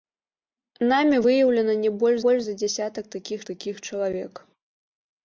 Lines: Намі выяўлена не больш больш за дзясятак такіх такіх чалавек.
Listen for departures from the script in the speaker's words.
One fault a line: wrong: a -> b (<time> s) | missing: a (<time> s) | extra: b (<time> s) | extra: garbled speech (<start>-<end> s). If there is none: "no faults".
no faults